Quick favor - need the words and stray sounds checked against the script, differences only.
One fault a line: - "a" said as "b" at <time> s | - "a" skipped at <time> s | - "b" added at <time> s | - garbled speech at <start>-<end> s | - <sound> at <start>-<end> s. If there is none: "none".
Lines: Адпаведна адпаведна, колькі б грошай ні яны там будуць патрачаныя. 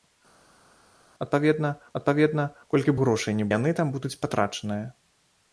none